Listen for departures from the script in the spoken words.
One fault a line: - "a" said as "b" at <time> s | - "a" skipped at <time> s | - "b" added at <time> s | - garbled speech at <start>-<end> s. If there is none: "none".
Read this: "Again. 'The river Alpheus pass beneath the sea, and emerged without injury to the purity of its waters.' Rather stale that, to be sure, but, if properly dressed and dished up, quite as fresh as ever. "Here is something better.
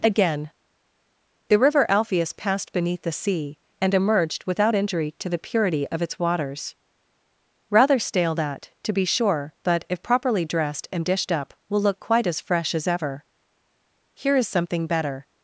- "pass" said as "passed" at 2.3 s
- "will look" added at 11.7 s